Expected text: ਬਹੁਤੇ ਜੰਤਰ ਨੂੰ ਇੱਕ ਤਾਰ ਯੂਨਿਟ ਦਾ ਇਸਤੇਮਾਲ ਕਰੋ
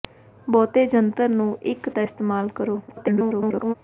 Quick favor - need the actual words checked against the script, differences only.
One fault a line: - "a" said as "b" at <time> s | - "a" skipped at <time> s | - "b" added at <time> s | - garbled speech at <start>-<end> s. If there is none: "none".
- "ਤਾਰ ਯੂਨਿਟ" skipped at 1.9 s
- garbled speech at 2.9-3.7 s